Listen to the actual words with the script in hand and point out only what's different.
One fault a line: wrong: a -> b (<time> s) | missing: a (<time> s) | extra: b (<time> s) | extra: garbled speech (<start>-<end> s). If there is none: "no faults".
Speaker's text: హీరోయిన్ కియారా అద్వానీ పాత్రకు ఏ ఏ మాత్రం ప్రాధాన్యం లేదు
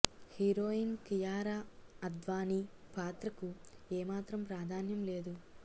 missing: ఏ (4.0 s)